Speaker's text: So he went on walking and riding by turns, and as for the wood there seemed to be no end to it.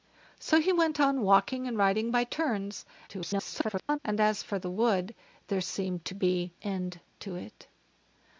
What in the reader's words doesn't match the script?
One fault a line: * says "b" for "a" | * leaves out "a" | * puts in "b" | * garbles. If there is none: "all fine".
* garbles
* leaves out "no"